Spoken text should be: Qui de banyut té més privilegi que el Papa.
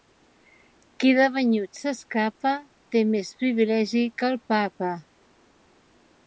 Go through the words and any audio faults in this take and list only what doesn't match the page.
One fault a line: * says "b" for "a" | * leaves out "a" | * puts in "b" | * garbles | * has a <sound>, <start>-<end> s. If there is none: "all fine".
* puts in "s'escapa"